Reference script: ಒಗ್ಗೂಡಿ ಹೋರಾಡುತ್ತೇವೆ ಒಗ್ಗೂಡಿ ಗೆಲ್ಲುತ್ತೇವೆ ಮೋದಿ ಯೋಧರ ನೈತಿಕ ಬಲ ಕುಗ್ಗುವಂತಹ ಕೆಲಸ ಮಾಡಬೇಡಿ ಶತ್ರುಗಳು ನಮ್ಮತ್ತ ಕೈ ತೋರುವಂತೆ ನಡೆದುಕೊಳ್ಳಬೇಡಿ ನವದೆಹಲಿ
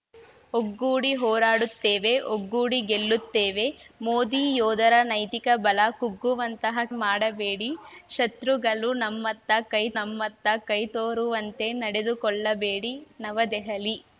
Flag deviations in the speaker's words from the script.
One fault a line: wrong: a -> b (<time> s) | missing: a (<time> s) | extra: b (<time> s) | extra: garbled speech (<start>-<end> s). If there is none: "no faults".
missing: ಕೆಲಸ (6.8 s)
extra: ನಮ್ಮತ್ತ ಕೈ (10.0 s)